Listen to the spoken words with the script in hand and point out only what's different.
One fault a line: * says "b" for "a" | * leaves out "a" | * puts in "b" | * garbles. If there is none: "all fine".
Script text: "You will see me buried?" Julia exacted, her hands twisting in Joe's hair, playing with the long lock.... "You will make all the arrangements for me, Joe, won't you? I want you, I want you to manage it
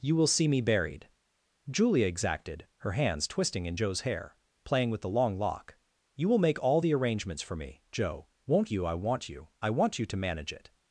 all fine